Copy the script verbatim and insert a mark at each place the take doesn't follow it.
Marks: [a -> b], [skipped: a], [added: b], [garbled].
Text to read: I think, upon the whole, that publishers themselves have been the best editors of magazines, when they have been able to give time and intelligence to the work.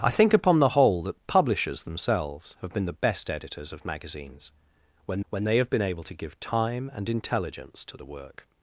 I think, upon the whole, that publishers themselves have been the best editors of magazines, when [added: when] they have been able to give time and intelligence to the work.